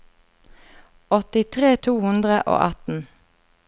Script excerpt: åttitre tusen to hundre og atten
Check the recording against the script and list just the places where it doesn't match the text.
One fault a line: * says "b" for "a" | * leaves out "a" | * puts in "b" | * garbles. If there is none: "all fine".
* leaves out "tusen"